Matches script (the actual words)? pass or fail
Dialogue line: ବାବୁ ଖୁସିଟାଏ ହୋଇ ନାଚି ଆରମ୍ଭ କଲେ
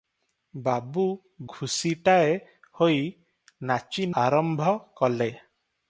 pass